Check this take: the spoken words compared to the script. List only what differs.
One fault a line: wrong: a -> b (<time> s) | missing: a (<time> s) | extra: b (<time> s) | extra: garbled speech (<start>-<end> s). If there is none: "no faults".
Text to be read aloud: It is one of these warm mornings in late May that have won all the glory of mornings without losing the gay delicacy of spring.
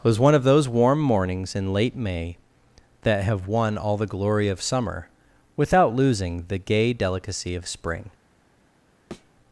wrong: is -> was (0.1 s)
wrong: these -> those (0.4 s)
wrong: mornings -> summer (4.6 s)